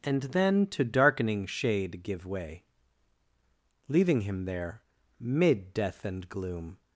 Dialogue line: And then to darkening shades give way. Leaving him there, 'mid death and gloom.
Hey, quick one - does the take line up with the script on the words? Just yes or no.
no